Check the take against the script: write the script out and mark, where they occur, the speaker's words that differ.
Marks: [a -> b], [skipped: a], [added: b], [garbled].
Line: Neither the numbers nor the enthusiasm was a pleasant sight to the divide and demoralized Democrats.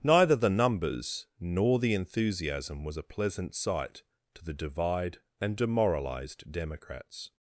Neither the numbers nor the enthusiasm was a pleasant sight to the divide and demoralized Democrats.